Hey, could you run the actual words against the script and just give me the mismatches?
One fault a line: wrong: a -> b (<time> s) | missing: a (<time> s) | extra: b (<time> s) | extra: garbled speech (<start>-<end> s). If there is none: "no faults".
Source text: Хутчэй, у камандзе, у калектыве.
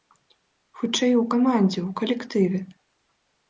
no faults